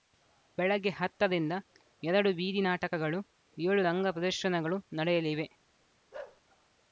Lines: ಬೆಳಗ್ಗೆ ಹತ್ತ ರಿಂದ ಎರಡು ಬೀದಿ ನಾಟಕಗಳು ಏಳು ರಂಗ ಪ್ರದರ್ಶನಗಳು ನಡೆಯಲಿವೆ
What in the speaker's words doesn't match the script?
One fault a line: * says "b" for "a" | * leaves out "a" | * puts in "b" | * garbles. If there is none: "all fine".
all fine